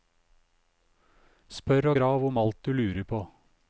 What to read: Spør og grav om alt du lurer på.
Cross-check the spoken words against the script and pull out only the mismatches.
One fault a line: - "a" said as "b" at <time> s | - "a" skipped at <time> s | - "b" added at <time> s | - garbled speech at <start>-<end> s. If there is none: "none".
none